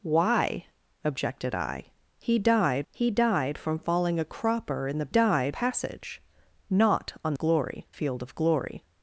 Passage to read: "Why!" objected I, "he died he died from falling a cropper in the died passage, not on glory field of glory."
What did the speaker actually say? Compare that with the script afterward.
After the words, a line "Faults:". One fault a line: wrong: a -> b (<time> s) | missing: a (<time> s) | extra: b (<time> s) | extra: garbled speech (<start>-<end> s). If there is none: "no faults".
"Why!" objected I, "he died he died from falling a cropper in the died passage, not on glory field of glory."
Faults:
no faults